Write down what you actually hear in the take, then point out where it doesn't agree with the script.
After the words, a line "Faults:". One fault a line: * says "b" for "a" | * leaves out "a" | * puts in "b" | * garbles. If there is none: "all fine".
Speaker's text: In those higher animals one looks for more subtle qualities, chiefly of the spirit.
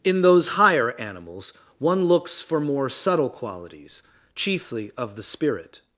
In those higher animals one looks for more subtle qualities, chiefly of the spirit.
Faults:
all fine